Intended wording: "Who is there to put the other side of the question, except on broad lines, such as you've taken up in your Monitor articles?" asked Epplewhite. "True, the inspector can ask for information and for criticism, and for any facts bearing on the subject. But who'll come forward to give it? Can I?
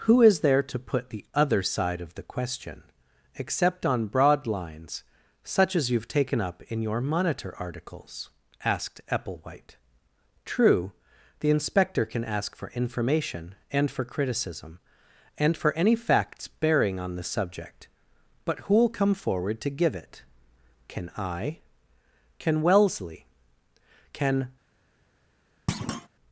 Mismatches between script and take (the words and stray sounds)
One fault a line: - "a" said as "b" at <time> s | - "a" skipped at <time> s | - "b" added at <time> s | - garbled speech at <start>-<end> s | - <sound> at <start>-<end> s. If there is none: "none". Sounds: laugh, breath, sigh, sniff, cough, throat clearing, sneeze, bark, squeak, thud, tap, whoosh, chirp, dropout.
- "Can Wellesley Can" added at 22.4 s
- thud at 25.7-26.1 s